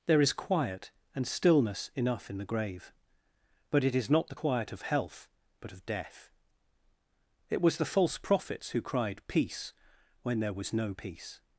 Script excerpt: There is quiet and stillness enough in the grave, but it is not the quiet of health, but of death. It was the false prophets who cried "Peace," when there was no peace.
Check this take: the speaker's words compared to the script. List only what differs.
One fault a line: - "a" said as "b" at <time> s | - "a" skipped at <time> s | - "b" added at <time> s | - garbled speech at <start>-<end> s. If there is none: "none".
none